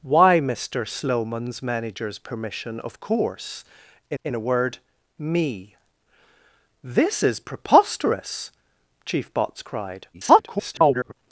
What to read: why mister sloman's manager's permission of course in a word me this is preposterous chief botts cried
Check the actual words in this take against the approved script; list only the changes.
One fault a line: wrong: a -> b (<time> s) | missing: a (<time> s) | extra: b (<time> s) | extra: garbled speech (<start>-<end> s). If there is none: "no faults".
extra: in (4.2 s)
extra: garbled speech (10.1-11.1 s)